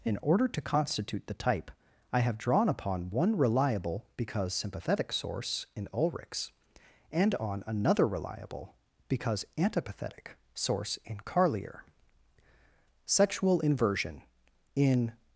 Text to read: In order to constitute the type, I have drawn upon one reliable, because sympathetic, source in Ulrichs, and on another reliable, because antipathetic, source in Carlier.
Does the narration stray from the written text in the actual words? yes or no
yes